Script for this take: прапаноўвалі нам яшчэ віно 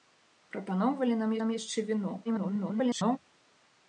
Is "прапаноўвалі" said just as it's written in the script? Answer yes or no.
yes